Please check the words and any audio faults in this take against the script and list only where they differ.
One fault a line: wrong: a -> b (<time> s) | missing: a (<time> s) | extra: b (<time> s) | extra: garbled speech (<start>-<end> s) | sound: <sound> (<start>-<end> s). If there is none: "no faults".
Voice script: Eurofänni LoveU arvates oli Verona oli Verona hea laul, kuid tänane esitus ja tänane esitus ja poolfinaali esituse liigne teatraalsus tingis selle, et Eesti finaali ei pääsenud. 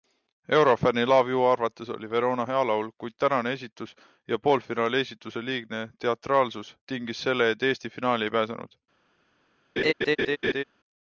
missing: oli Verona (2.5 s)
missing: tänane esitus ja (4.4 s)
sound: laugh (9.8-10.6 s)